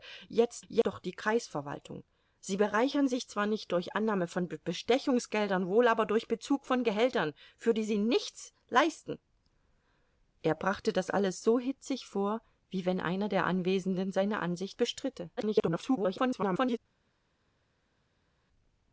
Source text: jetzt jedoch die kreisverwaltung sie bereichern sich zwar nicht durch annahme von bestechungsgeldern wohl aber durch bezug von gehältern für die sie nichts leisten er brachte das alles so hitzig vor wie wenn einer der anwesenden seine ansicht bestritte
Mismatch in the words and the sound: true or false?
true